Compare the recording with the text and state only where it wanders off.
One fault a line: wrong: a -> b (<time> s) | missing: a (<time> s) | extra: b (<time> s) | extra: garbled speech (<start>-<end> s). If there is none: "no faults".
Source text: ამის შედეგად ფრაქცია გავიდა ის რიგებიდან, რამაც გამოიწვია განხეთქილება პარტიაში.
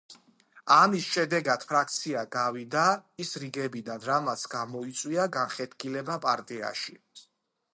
no faults